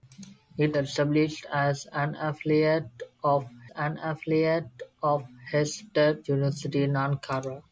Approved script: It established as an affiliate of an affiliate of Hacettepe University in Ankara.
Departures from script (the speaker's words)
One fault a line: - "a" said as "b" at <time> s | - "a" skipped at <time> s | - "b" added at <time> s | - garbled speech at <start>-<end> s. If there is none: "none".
none